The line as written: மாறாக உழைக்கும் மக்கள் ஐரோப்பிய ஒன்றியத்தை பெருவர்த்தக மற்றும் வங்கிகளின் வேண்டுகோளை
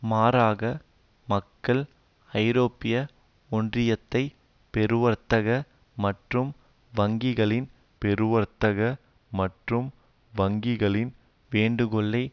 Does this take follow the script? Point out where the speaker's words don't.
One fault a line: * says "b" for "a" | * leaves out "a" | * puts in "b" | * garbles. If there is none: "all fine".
* leaves out "உழைக்கும்"
* puts in "பெருவர்த்தக மற்றும் வங்கிகளின்"